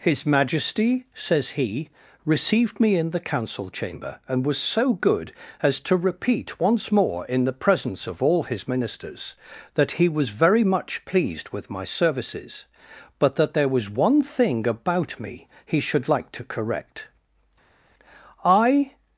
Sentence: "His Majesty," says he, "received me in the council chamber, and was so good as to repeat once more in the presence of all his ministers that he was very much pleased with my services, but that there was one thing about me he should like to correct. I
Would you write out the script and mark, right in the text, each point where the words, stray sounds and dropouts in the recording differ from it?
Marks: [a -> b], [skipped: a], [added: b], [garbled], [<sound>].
"His Majesty," says he, "received me in the council chamber, and was so good as to repeat once more in the presence of all his ministers that he was very much pleased with my services, but that there was one thing about me he should like to correct. I